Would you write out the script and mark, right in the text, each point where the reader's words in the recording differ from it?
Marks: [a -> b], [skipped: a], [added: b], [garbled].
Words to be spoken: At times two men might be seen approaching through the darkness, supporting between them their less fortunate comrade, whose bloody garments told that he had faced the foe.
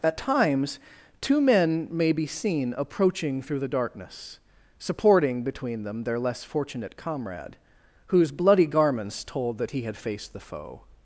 At times two men [might -> may] be seen approaching through the darkness, supporting between them their less fortunate comrade, whose bloody garments told that he had faced the foe.